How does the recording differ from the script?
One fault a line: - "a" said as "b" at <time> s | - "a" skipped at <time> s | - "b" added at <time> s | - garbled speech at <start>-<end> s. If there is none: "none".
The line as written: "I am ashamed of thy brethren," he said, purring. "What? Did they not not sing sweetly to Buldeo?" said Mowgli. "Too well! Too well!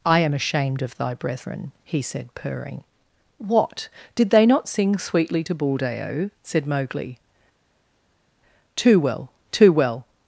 - "not" skipped at 4.7 s